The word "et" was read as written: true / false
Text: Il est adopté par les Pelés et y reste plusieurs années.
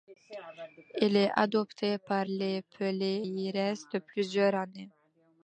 false